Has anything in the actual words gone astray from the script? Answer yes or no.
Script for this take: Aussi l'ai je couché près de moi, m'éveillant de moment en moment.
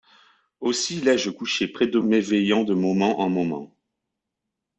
yes